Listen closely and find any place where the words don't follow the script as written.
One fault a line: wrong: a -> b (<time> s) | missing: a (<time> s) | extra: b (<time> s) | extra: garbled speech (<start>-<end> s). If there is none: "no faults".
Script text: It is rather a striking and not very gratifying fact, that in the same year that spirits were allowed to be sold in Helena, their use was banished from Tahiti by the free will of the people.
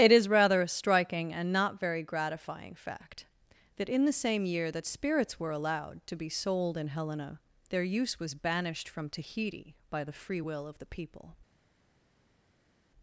no faults